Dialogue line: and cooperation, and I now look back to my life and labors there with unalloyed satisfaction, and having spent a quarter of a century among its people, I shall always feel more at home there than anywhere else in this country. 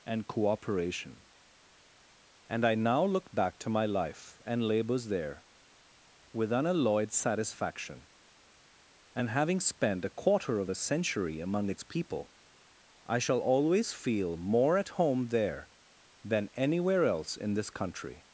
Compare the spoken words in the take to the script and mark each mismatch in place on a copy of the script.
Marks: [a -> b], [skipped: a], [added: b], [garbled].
and cooperation, and I now look back to my life and labors there with unalloyed satisfaction, and having spent a quarter of a century among its people, I shall always feel more at home there than anywhere else in this country.